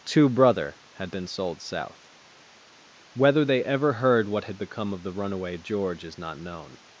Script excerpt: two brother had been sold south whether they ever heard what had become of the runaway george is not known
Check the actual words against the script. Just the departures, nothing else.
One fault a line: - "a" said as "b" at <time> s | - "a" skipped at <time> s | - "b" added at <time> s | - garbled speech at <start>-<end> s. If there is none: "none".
none